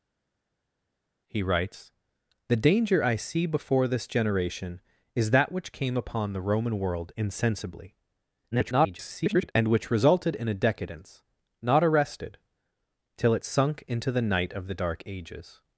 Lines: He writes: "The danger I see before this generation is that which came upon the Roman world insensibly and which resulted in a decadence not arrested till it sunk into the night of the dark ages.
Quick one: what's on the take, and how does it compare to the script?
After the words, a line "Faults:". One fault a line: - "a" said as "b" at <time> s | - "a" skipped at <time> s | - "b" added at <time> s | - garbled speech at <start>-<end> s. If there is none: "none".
He writes: "The danger I see before this generation is that which came upon the Roman world insensibly [garbled] and which resulted in a decadence not arrested till it sunk into the night of the dark ages.
Faults:
- garbled speech at 8.5-9.5 s